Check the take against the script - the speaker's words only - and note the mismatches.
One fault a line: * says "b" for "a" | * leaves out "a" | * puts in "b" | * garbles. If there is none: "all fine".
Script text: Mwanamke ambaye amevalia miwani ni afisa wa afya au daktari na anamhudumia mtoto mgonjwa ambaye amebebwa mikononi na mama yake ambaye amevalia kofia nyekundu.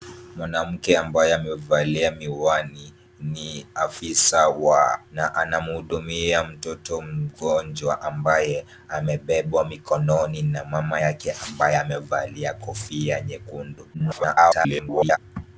* leaves out "afya au daktari"
* garbles